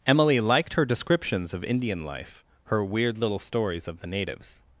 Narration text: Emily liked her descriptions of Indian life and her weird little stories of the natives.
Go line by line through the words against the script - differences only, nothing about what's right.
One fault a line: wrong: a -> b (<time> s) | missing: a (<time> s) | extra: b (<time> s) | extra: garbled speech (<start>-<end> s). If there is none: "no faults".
missing: and (2.4 s)